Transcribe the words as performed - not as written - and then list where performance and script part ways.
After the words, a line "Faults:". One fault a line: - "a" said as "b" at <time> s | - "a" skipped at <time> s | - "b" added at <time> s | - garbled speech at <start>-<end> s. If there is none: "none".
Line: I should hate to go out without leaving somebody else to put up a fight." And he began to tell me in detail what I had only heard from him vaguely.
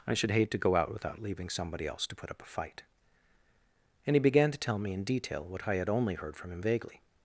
I should hate to go out without leaving somebody else to put up a fight." And he began to tell me in detail what I had only heard from him vaguely.
Faults:
none